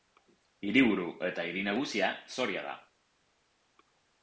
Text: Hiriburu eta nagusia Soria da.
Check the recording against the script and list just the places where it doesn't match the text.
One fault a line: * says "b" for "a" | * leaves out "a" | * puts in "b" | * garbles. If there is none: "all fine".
* puts in "hiri"